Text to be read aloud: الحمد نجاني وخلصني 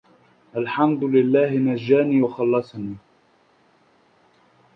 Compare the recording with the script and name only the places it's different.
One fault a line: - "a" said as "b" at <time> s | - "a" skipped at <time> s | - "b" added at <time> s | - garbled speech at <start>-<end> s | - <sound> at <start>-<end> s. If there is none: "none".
- "لله" added at 1.0 s